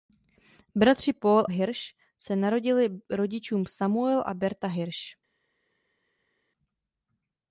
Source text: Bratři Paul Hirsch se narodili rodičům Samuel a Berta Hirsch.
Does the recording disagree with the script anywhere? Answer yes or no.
no